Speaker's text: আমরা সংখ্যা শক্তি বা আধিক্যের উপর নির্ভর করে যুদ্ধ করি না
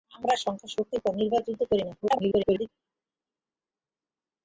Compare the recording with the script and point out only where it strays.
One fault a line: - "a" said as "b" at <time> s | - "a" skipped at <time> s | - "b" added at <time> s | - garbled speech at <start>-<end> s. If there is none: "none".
- "বা আধিক্যের" skipped at 0.9 s
- "করে" skipped at 1.4 s
- garbled speech at 2.0-2.7 s